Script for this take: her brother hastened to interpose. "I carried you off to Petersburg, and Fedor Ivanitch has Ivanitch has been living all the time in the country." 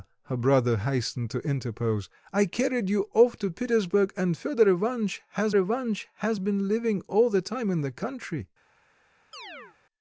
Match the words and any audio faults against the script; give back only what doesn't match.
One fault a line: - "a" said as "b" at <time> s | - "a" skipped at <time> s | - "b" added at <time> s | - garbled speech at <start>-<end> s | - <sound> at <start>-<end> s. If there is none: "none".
- chirp at 9.3-9.8 s